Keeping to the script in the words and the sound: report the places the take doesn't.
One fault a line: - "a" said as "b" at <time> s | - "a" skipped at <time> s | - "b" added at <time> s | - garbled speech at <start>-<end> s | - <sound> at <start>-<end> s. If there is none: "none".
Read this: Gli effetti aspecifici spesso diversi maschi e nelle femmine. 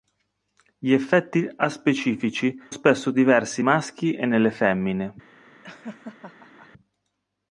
- laugh at 5.6-6.7 s